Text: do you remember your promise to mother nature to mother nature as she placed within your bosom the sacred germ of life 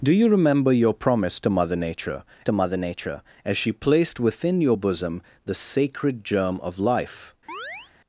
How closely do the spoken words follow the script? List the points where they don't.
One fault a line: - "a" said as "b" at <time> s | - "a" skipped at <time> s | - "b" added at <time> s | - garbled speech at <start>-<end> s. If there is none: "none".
none